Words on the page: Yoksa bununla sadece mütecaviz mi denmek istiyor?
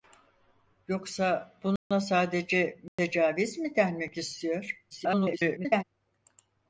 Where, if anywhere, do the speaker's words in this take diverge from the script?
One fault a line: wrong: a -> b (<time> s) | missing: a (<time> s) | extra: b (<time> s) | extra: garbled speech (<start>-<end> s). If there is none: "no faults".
extra: garbled speech (4.9-5.8 s)